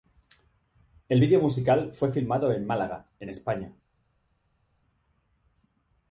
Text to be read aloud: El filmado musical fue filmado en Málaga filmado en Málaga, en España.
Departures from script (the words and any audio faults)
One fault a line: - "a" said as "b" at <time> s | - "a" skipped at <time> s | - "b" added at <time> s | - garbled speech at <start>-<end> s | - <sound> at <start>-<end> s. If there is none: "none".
- "filmado" said as "vídeo" at 1.2 s
- "filmado en Málaga" skipped at 3.1 s